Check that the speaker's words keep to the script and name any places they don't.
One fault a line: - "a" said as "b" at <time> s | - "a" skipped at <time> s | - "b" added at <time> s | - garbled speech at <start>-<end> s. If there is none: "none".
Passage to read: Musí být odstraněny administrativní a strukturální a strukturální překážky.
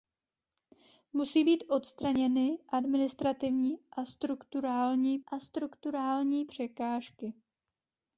none